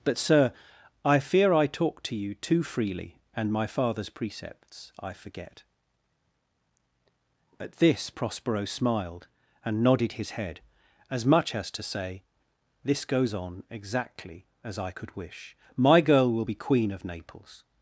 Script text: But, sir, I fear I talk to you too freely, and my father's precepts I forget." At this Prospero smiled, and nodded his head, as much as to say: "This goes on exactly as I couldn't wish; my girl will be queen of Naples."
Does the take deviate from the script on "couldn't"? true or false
true